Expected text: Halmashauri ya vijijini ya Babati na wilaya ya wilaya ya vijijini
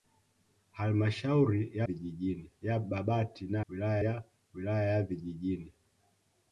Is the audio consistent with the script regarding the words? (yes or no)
yes